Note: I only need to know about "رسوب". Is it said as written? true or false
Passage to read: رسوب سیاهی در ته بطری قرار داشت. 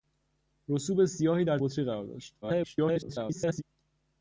true